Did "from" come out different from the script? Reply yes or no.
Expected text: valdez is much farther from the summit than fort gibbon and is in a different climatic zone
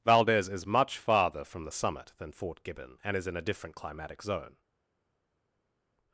no